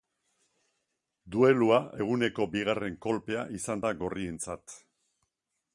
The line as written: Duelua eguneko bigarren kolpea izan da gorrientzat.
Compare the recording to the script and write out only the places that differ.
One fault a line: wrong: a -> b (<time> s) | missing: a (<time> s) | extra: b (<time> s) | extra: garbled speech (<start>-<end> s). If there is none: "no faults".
no faults